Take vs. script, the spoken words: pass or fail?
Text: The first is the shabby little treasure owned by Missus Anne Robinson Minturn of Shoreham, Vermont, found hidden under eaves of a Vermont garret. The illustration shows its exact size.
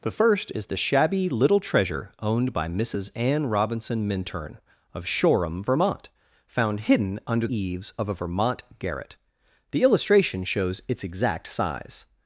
pass